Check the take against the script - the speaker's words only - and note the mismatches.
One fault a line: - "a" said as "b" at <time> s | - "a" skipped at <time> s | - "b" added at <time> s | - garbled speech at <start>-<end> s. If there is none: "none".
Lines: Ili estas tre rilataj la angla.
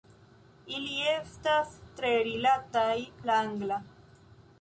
none